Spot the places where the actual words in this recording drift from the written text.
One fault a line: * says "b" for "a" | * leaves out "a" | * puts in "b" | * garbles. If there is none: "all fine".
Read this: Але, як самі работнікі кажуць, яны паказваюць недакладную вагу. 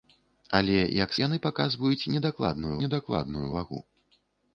* leaves out "самі работнікі кажуць"
* puts in "недакладную"